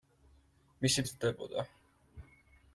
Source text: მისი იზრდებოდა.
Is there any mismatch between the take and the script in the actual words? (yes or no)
no